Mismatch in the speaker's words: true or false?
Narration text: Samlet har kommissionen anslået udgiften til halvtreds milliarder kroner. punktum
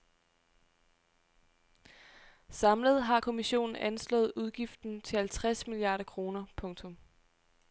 false